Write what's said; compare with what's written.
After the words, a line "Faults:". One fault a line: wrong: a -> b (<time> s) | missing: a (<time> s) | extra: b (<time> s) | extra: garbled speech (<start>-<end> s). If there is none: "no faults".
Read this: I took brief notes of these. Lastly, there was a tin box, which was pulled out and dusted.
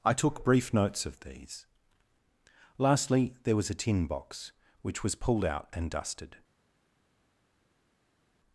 I took brief notes of these. Lastly, there was a tin box, which was pulled out and dusted.
Faults:
no faults